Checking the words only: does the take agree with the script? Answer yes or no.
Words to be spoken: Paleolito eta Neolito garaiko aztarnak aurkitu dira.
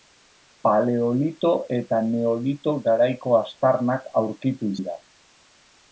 yes